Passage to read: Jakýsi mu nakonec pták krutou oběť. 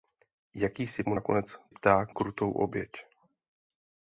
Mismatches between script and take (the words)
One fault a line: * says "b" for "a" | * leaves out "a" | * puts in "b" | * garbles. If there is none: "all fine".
all fine